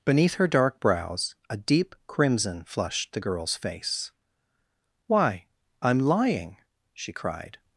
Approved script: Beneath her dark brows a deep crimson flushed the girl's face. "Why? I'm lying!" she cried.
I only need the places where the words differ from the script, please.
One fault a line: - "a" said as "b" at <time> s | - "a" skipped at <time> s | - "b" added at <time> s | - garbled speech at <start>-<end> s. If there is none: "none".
none